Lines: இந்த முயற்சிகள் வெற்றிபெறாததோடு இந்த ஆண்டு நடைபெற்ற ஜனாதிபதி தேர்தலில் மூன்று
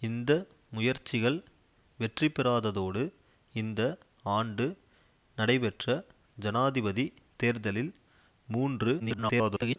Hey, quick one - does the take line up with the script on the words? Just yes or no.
no